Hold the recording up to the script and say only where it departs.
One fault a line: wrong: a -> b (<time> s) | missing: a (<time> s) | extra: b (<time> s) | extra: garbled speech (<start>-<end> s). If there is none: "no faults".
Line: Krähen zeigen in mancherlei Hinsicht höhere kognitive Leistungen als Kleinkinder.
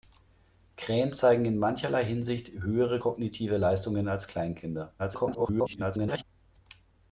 extra: garbled speech (5.0-6.2 s)